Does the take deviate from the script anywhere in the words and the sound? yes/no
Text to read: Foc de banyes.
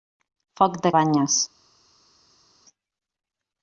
no